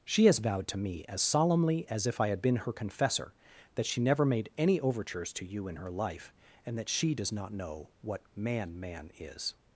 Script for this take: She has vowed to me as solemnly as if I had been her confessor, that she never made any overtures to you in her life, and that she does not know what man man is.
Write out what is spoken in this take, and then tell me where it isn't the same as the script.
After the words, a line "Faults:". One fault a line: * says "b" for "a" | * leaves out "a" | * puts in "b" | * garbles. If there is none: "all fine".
She has vowed to me as solemnly as if I had been her confessor, that she never made any overtures to you in her life, and that she does not know what man man is.
Faults:
all fine